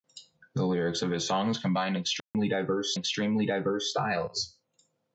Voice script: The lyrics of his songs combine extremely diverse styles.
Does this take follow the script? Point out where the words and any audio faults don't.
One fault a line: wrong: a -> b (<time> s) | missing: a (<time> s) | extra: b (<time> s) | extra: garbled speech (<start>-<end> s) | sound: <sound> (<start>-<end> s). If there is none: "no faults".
sound: dropout (2.2-2.3 s)
extra: extremely diverse (2.9 s)